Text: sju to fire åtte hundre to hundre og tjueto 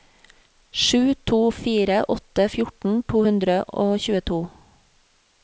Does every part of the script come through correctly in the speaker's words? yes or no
no